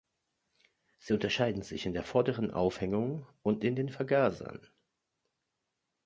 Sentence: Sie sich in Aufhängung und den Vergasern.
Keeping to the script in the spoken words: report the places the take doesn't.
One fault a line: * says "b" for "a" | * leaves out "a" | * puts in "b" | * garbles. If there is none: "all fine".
* puts in "unterscheiden"
* puts in "der vorderen"
* puts in "in"